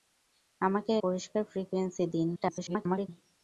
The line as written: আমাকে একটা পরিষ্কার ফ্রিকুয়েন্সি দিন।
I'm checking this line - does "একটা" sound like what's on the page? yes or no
no